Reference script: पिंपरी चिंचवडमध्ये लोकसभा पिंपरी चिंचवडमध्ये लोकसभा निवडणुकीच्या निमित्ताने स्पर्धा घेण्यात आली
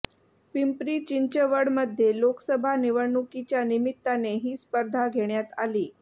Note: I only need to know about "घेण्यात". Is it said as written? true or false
true